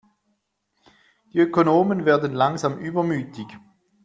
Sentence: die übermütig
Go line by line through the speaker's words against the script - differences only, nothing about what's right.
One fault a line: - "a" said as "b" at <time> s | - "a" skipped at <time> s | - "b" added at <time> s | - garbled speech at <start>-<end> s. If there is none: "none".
- "ökonomen werden langsam" added at 1.4 s